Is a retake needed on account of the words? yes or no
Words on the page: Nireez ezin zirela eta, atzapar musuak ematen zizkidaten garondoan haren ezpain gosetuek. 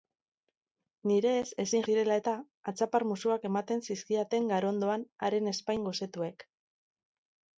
no